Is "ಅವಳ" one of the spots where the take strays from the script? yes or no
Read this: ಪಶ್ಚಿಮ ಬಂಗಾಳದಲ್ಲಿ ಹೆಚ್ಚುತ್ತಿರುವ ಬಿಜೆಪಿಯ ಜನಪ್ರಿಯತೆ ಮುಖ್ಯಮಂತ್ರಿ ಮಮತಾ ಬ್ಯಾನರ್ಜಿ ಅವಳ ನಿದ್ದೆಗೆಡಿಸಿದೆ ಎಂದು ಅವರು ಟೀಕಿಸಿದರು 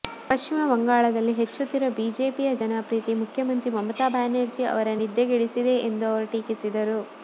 yes